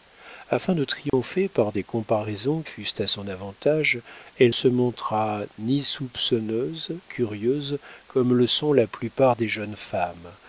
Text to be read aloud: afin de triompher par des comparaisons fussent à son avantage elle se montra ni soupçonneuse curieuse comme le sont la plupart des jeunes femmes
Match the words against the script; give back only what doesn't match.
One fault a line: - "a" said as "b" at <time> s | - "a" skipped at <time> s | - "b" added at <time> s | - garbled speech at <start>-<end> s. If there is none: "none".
none